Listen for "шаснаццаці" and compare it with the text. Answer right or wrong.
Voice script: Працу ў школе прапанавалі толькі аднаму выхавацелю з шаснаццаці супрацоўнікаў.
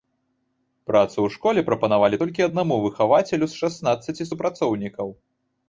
right